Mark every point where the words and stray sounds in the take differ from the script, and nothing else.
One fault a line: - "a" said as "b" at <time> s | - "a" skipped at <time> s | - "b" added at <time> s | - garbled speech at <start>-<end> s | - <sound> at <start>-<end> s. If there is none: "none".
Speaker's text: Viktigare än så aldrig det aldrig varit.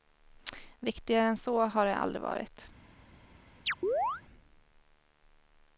- "aldrig" said as "har" at 1.6 s
- chirp at 3.7-4.2 s